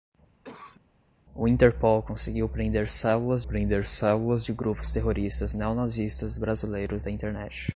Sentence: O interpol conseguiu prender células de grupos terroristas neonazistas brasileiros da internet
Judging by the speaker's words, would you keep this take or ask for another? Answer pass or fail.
fail